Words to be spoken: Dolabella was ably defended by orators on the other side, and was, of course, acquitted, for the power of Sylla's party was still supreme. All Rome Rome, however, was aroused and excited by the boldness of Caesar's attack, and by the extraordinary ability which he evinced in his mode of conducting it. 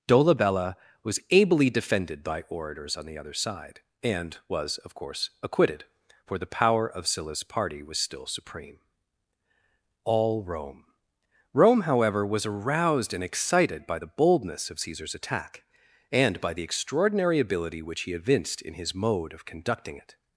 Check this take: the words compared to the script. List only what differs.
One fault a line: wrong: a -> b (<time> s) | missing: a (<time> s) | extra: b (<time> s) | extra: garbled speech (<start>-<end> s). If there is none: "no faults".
no faults